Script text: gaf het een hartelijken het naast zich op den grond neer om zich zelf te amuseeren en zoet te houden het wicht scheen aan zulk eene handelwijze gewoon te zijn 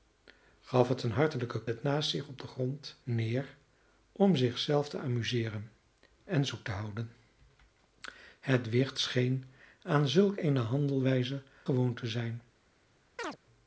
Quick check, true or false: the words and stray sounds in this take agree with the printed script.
false